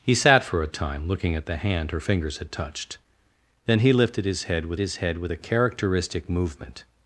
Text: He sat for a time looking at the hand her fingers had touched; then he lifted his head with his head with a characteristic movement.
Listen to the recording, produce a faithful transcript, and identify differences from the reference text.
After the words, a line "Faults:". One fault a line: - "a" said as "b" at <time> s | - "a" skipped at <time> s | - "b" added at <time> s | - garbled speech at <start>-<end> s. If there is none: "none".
He sat for a time looking at the hand her fingers had touched; then he lifted his head with his head with a characteristic movement.
Faults:
none